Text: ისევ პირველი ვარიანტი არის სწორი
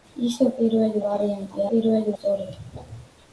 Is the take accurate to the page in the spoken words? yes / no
no